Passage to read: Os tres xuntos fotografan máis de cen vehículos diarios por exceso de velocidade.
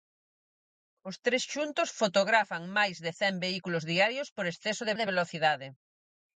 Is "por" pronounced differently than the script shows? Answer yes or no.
no